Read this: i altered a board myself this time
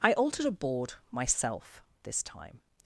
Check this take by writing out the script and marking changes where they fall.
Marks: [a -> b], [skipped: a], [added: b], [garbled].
i altered a board myself this time